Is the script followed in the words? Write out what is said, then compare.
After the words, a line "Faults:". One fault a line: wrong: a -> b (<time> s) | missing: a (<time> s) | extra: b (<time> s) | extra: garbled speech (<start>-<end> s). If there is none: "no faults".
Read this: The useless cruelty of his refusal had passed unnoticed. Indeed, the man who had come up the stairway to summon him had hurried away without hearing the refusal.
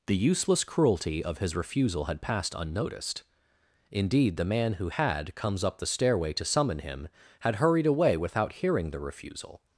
The useless cruelty of his refusal had passed unnoticed. Indeed, the man who had comes up the stairway to summon him had hurried away without hearing the refusal.
Faults:
wrong: come -> comes (5.3 s)